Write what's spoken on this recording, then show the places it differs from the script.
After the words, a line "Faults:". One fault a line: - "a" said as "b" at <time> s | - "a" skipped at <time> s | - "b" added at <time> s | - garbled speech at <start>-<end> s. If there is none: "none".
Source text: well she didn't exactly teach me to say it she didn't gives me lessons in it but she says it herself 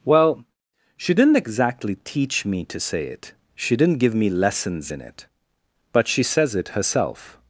well she didn't exactly teach me to say it she didn't give me lessons in it but she says it herself
Faults:
- "gives" said as "give" at 4.0 s